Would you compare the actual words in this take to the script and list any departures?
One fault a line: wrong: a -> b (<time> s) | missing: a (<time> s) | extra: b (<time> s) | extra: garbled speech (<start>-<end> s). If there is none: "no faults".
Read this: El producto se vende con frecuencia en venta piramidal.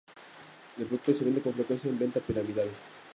no faults